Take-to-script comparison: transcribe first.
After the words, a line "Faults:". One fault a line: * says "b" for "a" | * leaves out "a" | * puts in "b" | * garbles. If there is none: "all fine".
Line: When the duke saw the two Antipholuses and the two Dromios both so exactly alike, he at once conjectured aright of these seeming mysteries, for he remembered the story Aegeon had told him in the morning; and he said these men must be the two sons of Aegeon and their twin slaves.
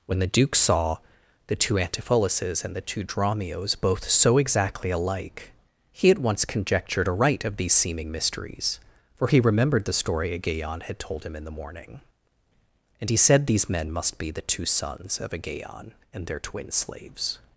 When the duke saw the two Antipholuses and the two Dromios both so exactly alike, he at once conjectured aright of these seeming mysteries, for he remembered the story Aegeon had told him in the morning; and he said these men must be the two sons of Aegeon and their twin slaves.
Faults:
all fine